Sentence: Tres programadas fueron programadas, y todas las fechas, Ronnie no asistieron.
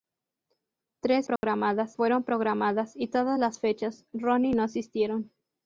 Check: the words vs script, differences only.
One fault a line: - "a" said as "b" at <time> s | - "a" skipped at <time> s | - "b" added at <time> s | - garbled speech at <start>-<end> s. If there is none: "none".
none